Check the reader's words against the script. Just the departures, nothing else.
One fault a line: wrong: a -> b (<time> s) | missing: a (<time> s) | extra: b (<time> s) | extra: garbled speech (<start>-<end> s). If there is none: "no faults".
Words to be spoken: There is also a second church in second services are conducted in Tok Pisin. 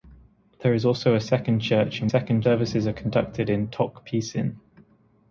no faults